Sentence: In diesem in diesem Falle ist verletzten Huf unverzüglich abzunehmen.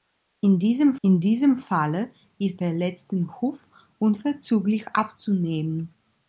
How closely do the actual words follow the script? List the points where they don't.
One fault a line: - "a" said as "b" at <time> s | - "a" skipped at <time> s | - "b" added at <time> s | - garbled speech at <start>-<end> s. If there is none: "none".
none